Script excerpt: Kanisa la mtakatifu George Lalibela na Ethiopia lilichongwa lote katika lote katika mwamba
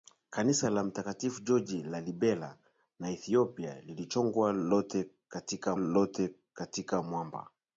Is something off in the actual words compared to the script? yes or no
no